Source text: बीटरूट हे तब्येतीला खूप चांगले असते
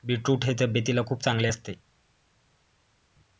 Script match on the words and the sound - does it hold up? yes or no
yes